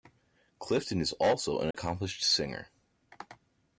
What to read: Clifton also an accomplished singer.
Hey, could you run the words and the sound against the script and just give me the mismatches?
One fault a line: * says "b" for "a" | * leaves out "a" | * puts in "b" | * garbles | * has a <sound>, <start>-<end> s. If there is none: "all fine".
* puts in "is"
* has a dropout, 1.7-1.7 s